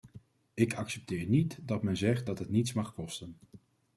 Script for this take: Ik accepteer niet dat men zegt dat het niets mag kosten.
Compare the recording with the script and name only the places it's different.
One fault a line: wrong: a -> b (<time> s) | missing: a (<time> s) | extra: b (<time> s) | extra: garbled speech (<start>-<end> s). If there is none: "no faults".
no faults